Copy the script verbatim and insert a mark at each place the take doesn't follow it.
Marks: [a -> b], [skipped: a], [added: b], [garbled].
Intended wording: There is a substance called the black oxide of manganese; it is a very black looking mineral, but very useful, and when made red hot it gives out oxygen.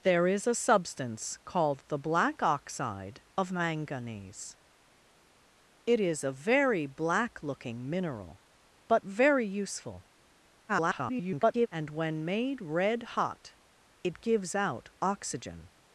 There is a substance called the black oxide of manganese; it is a very black looking mineral, but very useful, [garbled] and when made red hot it gives out oxygen.